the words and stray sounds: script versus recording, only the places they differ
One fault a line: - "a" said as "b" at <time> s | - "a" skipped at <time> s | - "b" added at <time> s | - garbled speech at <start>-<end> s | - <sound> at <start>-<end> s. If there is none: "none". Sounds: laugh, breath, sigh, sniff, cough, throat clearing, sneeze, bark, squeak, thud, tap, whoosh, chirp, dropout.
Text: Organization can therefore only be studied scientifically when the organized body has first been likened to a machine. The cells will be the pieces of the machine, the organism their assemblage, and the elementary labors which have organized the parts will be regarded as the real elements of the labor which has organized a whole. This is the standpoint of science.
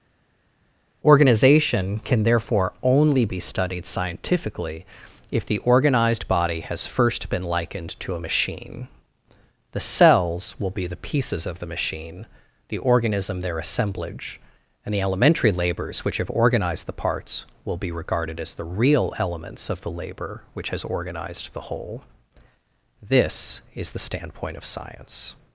- "when" said as "if" at 5.3 s
- "a" said as "the" at 21.5 s